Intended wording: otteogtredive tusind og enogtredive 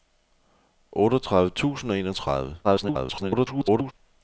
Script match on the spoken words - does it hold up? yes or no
no